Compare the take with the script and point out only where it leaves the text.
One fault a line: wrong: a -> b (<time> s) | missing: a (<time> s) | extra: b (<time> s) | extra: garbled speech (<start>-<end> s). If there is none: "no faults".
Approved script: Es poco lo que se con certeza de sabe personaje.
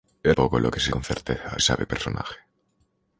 no faults